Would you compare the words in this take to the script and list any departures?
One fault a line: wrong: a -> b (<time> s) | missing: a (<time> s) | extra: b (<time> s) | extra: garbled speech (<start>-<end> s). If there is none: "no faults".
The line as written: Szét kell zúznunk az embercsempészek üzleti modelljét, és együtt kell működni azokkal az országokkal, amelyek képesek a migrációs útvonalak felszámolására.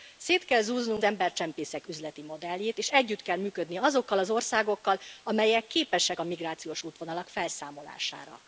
missing: az (1.0 s)